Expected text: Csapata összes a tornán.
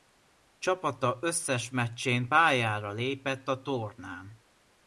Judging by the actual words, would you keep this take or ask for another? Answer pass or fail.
fail